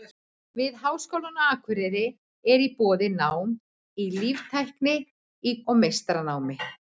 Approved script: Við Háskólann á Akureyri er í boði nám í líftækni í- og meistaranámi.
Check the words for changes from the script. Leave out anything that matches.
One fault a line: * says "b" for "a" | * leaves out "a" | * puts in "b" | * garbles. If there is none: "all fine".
all fine